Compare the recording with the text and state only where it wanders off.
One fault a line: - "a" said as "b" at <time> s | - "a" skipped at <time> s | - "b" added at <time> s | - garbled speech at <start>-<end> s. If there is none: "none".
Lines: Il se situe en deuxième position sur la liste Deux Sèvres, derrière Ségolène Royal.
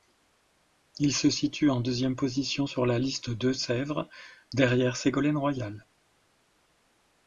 none